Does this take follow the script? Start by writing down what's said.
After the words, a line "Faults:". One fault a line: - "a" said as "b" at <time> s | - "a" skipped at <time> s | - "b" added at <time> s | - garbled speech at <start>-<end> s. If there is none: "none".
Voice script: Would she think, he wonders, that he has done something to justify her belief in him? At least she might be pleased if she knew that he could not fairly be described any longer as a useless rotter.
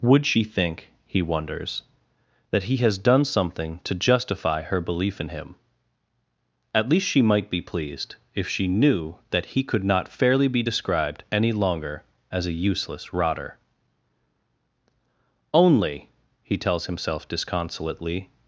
Would she think, he wonders, that he has done something to justify her belief in him? At least she might be pleased if she knew that he could not fairly be described any longer as a useless rotter. "Only," he tells himself disconsolately
Faults:
- "Only he tells himself disconsolately" added at 15.5 s